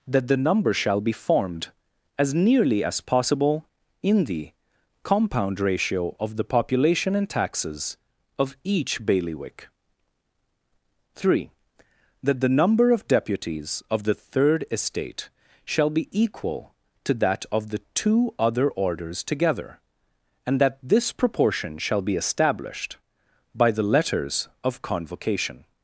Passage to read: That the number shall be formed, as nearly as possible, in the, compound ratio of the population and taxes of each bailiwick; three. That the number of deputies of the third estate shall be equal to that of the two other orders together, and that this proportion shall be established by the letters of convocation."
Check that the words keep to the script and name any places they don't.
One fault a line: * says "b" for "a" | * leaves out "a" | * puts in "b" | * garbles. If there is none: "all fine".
all fine